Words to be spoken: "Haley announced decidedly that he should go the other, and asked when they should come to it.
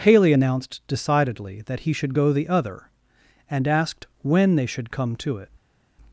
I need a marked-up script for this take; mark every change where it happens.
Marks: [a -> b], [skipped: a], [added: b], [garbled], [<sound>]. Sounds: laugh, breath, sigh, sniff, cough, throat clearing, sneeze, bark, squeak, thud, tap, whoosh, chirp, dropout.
"Haley announced decidedly that he should go the other, and asked when they should come to it.